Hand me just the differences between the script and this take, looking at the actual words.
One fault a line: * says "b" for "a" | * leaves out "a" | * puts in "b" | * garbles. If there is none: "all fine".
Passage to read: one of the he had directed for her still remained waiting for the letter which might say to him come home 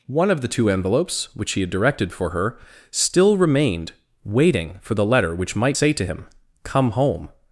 * puts in "two envelopes which"